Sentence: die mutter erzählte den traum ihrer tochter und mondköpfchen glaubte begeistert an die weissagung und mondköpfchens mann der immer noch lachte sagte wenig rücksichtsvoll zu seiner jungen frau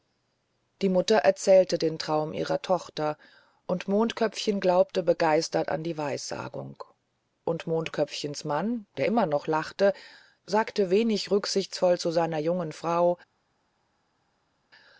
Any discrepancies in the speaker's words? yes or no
no